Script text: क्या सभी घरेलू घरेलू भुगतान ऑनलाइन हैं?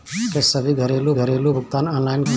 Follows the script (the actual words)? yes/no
yes